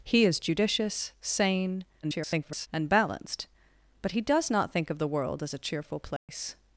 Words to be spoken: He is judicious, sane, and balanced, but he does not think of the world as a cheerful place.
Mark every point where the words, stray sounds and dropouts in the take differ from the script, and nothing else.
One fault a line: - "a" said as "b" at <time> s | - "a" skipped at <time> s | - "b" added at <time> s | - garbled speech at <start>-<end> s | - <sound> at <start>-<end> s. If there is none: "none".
- garbled speech at 2.0-2.7 s
- dropout at 6.2-6.3 s